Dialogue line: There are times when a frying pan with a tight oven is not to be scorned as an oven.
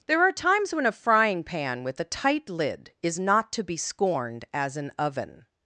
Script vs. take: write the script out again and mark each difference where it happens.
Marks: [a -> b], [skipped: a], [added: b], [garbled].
There are times when a frying pan with a tight [oven -> lid] is not to be scorned as an oven.